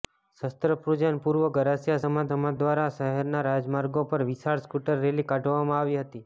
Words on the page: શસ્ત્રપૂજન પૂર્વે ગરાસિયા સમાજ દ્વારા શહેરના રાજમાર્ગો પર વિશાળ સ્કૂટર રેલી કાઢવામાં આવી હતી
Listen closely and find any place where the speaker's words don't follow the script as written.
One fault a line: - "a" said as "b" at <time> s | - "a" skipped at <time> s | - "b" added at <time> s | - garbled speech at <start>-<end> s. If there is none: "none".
- "સમાજ" added at 2.3 s